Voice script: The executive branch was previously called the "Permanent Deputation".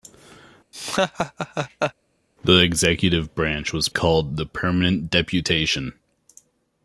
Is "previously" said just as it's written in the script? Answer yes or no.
no